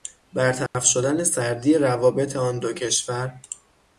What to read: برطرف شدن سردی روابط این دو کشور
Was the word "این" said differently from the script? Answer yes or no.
yes